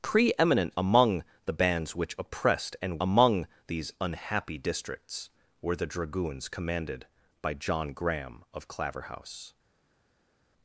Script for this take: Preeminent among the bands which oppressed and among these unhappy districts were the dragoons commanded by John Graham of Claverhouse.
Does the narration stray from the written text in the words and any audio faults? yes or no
no